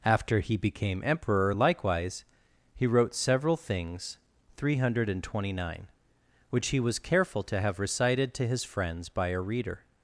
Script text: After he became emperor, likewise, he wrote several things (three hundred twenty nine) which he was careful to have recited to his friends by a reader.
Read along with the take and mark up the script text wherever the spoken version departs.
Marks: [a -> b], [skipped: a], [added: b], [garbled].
After he became emperor, likewise, he wrote several things (three hundred twenty nine) which he was careful to have recited to his friends by a reader.